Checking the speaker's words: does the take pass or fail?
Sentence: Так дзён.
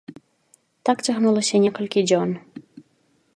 fail